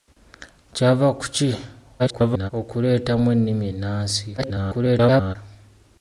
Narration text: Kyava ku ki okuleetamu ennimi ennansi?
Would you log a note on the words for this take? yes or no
yes